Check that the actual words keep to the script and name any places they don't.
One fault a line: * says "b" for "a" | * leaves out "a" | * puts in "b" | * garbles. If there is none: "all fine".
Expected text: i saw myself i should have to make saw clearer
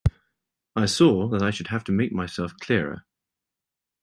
* says "that" for "myself"
* says "myself" for "saw"